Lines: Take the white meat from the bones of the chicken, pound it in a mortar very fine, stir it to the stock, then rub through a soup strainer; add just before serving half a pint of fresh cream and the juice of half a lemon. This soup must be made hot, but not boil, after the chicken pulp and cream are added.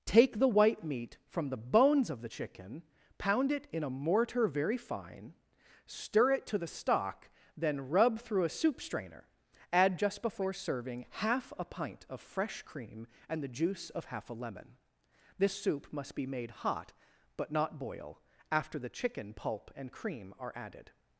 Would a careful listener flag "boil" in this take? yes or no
no